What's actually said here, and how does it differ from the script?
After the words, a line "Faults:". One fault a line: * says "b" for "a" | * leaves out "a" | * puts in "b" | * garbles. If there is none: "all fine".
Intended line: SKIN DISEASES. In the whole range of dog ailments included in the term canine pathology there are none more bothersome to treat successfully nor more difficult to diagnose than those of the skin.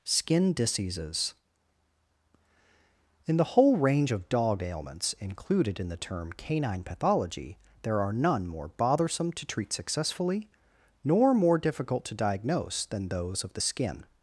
SKIN DISEASES. In the whole range of dog ailments included in the term canine pathology there are none more bothersome to treat successfully nor more difficult to diagnose than those of the skin.
Faults:
all fine